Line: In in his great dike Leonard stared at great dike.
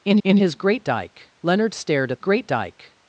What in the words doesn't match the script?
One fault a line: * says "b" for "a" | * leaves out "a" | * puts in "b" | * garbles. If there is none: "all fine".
all fine